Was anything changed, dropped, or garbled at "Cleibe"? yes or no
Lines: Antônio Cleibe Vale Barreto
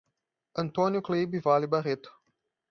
no